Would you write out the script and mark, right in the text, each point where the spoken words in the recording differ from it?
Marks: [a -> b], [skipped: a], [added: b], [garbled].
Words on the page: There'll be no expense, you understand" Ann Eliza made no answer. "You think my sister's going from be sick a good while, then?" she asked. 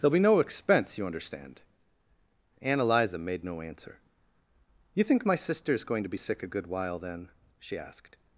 There'll be no expense, you understand" Ann Eliza made no answer. "You think my sister's going [from -> to] be sick a good while, then?" she asked.